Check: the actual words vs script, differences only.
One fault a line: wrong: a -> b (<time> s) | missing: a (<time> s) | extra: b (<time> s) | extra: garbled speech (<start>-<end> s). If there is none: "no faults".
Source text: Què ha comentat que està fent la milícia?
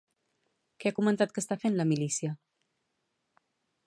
no faults